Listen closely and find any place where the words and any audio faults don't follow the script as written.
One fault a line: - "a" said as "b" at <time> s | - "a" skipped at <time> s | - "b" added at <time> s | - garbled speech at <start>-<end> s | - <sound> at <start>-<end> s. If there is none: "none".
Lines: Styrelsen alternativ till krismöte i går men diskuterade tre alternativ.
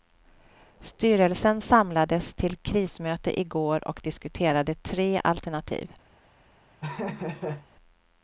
- "alternativ" said as "samlades" at 1.6 s
- "men" said as "och" at 3.9 s
- laugh at 6.8-7.7 s